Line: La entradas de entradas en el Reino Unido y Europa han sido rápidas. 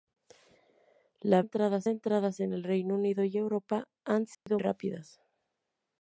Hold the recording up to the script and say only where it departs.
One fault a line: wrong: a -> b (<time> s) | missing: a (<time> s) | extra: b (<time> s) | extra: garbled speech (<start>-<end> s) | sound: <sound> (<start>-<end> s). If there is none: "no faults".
sound: dropout (4.3-4.5 s)